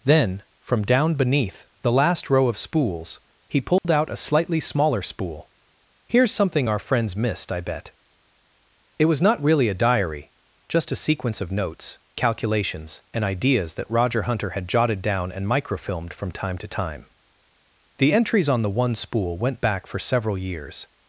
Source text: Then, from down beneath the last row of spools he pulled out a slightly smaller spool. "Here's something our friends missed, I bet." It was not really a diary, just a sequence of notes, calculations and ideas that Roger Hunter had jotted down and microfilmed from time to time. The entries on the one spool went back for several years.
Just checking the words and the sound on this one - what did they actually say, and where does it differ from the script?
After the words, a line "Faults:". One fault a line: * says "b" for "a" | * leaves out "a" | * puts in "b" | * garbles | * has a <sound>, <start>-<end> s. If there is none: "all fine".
Then, from down beneath the last row of spools he pulled out a slightly smaller spool. "Here's something our friends missed, I bet." It was not really a diary, just a sequence of notes, calculations and ideas that Roger Hunter had jotted down and microfilmed from time to time. The entries on the one spool went back for several years.
Faults:
* has a dropout, 3.8-3.8 s